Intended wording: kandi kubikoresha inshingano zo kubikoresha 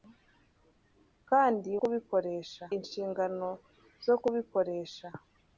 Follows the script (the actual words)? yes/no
yes